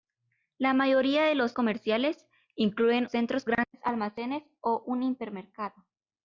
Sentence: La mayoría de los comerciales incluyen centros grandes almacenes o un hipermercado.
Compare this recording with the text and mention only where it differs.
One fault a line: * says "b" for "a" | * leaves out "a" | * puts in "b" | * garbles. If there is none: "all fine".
all fine